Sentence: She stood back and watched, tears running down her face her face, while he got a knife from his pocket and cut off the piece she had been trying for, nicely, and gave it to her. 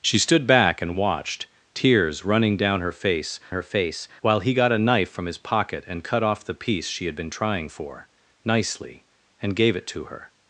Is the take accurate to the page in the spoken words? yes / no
yes